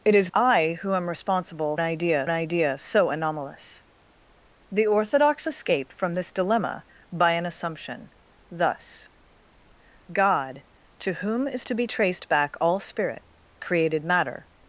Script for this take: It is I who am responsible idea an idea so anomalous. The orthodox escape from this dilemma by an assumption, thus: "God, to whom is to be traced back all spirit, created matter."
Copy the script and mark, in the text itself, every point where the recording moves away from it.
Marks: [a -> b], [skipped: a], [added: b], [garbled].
It is I who am responsible idea an idea so anomalous. The orthodox escape from this dilemma by an assumption, thus: "God, to whom is to be traced back all spirit, created matter."